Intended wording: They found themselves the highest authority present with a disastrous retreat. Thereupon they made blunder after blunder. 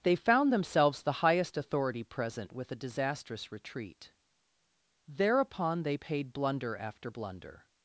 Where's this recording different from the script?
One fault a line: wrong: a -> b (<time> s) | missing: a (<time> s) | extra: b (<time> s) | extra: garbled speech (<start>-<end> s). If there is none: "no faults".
wrong: made -> paid (5.9 s)